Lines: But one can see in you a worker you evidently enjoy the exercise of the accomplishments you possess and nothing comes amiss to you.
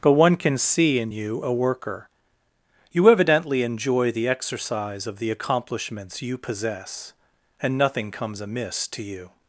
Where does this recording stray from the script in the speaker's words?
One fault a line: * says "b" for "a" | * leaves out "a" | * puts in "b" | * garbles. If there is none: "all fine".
all fine